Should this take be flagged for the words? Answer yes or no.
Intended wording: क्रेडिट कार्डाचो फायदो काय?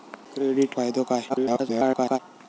yes